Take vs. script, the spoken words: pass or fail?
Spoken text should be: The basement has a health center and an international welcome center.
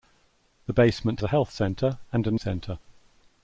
fail